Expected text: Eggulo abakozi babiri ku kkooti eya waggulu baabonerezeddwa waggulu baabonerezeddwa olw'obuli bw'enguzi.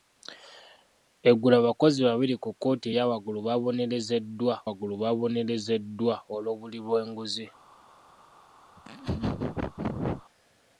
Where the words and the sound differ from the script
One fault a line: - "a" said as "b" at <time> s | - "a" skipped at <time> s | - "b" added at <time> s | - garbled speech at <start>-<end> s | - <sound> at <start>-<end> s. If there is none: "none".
- laugh at 8.8-10.2 s